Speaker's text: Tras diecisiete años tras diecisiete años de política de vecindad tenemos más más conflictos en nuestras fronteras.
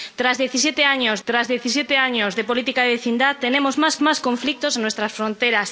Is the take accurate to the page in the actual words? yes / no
yes